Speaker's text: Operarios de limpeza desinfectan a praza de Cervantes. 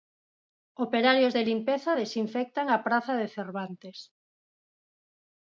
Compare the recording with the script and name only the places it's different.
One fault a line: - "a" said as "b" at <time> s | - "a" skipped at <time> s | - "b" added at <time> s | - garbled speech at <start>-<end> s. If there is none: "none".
none